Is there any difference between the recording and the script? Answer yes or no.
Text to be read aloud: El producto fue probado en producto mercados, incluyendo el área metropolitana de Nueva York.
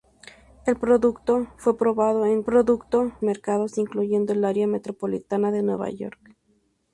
no